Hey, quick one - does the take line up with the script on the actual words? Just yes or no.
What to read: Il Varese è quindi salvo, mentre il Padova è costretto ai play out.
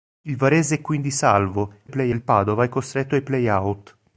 no